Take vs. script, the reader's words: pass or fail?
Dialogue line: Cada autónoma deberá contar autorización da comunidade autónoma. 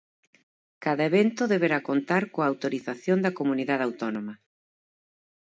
fail